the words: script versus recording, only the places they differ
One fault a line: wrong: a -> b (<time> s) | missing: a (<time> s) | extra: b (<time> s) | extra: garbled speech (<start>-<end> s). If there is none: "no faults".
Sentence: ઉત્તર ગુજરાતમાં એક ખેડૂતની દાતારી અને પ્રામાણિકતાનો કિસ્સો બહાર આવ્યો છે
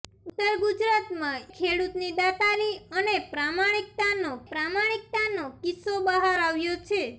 missing: એક (1.4 s)
extra: પ્રામાણિકતાનો (4.5 s)